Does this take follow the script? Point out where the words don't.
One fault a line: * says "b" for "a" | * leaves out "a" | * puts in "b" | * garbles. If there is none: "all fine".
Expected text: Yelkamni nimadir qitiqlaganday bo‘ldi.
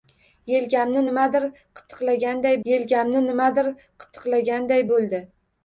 * puts in "yelkamni nimadir qitiqlaganday"